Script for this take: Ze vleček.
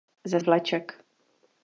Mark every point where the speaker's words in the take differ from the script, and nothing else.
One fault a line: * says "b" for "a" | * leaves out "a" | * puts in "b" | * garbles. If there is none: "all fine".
all fine